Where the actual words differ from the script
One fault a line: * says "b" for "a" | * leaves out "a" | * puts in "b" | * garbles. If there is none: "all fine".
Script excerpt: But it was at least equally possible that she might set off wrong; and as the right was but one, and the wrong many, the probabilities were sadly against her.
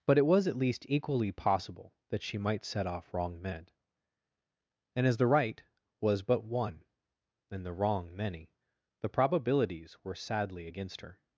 * puts in "men"